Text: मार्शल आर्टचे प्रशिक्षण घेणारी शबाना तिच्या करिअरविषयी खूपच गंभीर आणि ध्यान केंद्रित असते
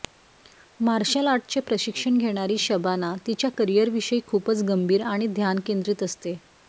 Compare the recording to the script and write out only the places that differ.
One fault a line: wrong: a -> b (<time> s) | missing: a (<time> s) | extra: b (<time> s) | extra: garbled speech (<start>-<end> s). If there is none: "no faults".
no faults